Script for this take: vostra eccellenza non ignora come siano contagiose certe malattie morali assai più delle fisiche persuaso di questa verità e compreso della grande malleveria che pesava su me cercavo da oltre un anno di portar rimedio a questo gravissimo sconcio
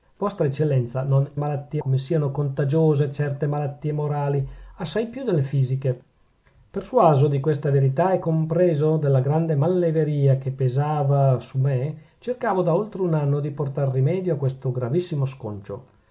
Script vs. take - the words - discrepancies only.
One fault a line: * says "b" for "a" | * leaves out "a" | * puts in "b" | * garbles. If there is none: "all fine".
* says "malattie" for "ignora"